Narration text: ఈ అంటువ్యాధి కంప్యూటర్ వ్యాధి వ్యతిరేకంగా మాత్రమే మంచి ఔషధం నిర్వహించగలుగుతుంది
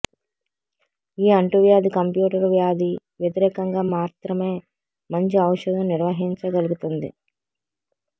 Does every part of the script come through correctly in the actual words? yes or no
yes